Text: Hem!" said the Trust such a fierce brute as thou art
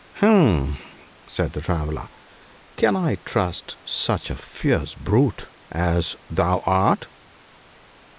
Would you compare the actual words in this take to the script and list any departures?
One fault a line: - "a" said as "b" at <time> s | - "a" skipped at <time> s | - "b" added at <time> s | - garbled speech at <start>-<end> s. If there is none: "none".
- "Traveller can I" added at 1.6 s